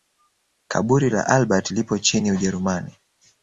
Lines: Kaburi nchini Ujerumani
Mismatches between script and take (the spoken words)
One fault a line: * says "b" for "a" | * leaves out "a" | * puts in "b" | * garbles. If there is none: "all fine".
* puts in "la Albert lipo"